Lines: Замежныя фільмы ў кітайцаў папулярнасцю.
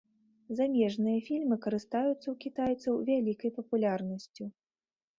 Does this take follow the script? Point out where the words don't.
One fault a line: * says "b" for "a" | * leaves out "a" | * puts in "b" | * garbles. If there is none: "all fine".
* puts in "карыстаюцца"
* puts in "вялікай"